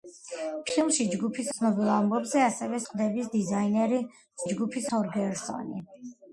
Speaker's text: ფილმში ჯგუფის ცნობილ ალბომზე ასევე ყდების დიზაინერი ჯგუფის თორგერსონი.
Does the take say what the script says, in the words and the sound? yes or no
yes